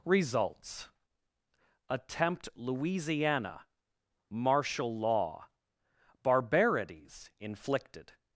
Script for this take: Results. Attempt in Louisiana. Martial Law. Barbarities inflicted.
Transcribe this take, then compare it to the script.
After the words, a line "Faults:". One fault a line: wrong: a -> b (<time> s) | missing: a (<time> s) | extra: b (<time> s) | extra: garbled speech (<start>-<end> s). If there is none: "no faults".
Results. Attempt Louisiana. Martial Law. Barbarities inflicted.
Faults:
missing: in (2.5 s)